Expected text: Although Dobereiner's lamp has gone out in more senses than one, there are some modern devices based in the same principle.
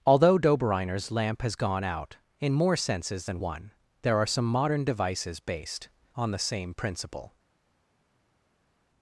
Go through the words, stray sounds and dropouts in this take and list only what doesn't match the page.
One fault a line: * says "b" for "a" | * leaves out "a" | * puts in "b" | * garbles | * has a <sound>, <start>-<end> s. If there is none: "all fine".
* says "on" for "in"